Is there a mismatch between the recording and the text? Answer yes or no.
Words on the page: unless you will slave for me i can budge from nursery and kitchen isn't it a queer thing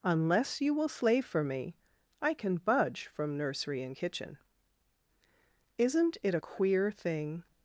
no